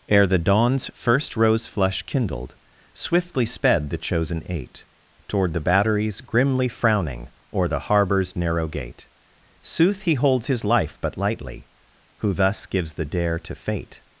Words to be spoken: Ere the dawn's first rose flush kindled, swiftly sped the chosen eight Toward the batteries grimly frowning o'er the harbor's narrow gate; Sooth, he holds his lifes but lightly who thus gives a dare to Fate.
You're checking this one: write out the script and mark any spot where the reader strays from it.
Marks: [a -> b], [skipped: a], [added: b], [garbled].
Ere the dawn's first rose flush kindled, swiftly sped the chosen eight Toward the batteries grimly frowning o'er the harbor's narrow gate; Sooth, he holds his [lifes -> life] but lightly who thus gives [a -> the] dare to Fate.